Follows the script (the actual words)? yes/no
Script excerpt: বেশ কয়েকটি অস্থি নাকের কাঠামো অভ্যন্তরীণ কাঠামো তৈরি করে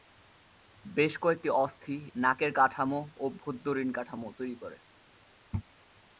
yes